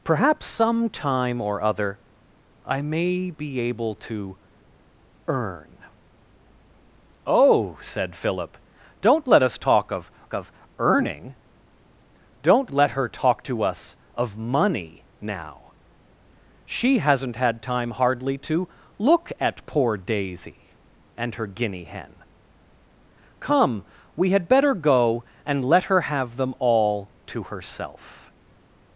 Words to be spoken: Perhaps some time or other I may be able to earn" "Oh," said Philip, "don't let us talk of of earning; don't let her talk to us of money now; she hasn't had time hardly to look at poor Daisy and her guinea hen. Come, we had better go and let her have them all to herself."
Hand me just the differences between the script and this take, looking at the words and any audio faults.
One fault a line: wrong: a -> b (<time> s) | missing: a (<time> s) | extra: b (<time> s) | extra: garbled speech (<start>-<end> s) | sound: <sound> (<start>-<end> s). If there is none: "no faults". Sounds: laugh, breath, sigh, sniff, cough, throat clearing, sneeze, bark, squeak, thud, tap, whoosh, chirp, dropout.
no faults